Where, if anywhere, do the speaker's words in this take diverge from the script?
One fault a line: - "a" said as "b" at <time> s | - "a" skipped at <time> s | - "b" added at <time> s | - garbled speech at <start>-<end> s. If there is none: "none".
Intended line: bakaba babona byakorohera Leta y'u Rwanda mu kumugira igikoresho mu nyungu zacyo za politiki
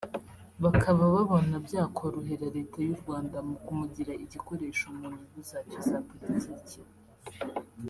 none